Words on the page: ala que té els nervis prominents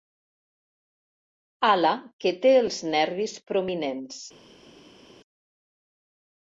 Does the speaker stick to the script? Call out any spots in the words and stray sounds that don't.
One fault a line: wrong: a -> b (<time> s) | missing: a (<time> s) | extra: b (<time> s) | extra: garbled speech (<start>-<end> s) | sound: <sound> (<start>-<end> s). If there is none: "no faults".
no faults